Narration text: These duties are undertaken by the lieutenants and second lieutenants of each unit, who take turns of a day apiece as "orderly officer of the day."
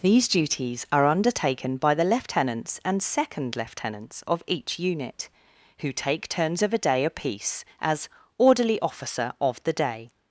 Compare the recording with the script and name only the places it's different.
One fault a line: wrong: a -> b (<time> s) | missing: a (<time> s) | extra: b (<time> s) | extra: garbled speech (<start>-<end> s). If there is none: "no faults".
no faults